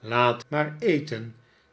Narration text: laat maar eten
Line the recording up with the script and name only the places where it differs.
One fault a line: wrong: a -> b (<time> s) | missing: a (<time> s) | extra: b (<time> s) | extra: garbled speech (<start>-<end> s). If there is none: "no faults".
no faults